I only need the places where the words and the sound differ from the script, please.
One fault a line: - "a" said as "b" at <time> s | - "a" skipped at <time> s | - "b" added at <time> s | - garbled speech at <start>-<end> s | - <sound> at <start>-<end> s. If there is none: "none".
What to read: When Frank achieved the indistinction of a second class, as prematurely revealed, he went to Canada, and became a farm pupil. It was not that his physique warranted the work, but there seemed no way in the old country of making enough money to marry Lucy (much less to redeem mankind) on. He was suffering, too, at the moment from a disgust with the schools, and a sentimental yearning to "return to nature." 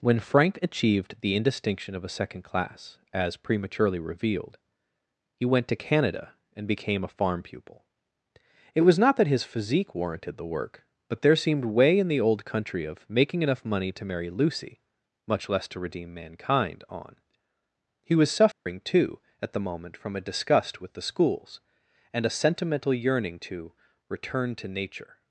- "no" skipped at 11.7 s
- dropout at 18.5-18.7 s